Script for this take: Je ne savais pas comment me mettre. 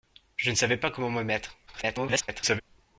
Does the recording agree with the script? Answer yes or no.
no